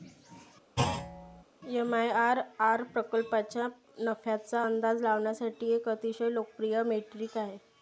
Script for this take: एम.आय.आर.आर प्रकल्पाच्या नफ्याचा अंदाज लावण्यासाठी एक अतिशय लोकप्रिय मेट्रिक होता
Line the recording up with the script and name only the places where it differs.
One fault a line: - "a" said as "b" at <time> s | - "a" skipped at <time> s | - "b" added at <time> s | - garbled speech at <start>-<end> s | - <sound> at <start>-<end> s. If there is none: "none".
- thud at 0.8-1.4 s
- "होता" said as "आहे" at 7.4 s